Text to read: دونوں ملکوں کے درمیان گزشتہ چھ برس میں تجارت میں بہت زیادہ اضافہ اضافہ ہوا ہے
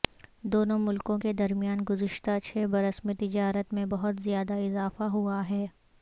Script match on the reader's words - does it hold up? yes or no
no